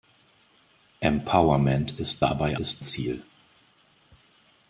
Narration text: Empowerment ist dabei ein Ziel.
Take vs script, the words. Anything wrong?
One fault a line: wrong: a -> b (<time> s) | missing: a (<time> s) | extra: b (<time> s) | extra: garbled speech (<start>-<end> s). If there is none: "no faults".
wrong: ein -> ist (2.6 s)